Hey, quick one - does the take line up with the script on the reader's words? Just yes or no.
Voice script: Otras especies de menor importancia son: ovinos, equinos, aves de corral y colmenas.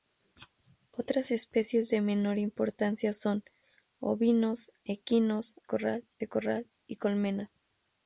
no